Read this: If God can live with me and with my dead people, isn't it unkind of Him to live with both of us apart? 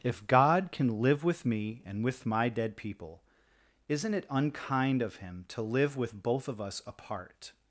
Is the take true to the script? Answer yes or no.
yes